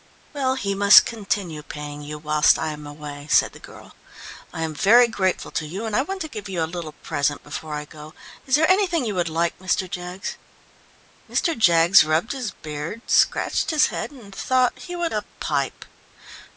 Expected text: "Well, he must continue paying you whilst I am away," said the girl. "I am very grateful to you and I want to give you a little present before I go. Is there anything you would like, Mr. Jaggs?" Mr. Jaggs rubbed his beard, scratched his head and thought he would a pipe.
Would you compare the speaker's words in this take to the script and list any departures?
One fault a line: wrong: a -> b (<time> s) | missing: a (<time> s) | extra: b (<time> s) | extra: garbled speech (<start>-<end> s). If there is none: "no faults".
no faults